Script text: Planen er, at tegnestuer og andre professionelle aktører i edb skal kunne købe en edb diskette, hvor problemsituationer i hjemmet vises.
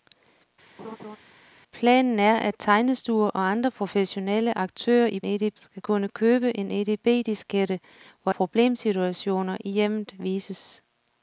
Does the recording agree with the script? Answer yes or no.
yes